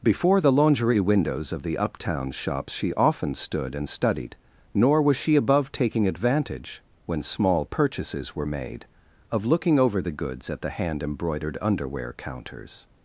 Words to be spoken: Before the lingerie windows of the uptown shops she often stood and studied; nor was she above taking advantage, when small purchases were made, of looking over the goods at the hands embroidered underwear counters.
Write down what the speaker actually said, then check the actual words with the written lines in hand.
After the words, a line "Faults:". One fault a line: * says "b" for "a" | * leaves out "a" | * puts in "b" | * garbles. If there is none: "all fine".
Before the lingerie windows of the uptown shops she often stood and studied; nor was she above taking advantage, when small purchases were made, of looking over the goods at the hand embroidered underwear counters.
Faults:
* says "hand" for "hands"